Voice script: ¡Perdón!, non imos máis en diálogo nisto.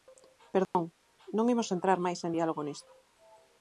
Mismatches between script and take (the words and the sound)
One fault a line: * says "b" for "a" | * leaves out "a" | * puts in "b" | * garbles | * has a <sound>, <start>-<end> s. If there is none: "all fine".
* has a dropout, 0.6-0.7 s
* puts in "entrar"